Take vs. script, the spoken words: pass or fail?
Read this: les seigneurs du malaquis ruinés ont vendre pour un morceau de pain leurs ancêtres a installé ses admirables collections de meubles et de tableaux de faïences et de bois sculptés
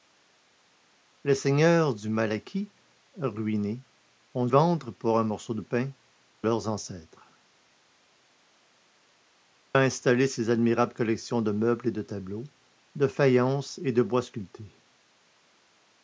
pass